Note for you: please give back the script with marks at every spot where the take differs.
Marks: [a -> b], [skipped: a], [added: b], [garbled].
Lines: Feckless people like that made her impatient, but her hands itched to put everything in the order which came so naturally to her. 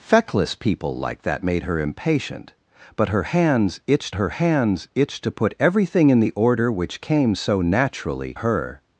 Feckless people like that made her impatient, but her hands itched [added: her hands itched] to put everything in the order which came so naturally [skipped: to] her.